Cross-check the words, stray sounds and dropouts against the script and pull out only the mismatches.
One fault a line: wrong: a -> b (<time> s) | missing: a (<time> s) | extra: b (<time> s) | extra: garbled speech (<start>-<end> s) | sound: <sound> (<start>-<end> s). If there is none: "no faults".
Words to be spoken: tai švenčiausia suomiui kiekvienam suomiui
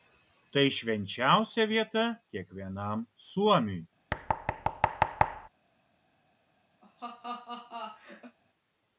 wrong: suomiui -> vieta (1.7 s)
sound: thud (4.1-5.5 s)
sound: laugh (6.8-8.4 s)